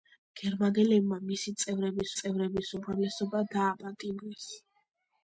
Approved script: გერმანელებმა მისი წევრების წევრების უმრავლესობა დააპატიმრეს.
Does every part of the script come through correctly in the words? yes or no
yes